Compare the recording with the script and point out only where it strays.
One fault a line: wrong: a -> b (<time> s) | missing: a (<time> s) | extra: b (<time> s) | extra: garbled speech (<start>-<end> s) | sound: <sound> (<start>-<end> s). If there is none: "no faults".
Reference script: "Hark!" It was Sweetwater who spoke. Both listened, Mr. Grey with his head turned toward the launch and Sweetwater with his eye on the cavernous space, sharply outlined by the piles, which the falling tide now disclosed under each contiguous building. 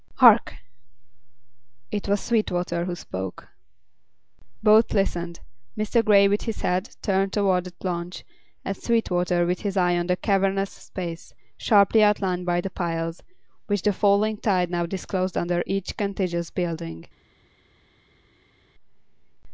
no faults